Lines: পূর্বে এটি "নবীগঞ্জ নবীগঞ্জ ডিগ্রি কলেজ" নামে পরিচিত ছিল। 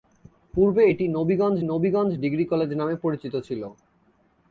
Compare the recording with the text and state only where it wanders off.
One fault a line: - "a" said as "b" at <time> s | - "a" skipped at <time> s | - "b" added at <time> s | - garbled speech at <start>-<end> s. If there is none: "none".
none